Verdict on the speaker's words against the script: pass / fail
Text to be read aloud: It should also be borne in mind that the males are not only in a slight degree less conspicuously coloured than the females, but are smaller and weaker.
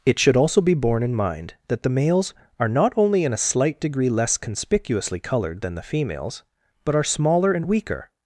pass